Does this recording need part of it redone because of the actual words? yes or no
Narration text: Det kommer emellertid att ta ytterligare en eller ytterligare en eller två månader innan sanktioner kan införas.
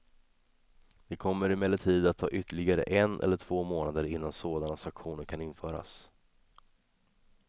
yes